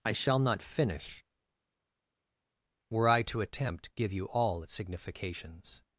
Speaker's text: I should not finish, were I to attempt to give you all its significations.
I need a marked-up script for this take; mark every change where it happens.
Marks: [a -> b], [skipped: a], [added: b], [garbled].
I [should -> shall] not finish, were I to attempt [skipped: to] give you all its significations.